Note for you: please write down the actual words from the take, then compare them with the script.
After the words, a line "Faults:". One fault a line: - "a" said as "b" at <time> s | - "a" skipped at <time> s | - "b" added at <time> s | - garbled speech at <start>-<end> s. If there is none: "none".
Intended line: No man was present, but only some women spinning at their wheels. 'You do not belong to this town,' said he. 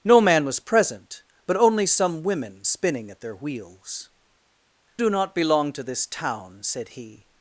No man was present, but only some women spinning at their wheels. 'Do not belong to this town,' said he.
Faults:
- "You" skipped at 4.1 s